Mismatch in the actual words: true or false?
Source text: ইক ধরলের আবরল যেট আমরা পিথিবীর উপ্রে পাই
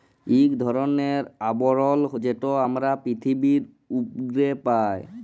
false